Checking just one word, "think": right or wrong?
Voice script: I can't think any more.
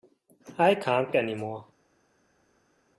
wrong